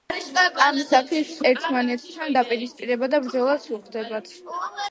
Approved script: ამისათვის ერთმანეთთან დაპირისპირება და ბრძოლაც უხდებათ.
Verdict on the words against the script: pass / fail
pass